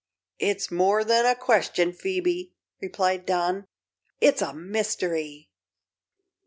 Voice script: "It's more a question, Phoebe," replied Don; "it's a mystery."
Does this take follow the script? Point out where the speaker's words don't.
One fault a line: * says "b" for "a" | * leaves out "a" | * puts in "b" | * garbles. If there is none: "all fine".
* puts in "than"